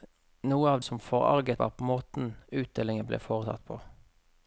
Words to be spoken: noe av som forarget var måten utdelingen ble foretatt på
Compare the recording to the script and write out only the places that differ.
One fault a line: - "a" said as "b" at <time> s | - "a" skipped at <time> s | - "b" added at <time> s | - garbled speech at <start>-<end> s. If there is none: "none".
none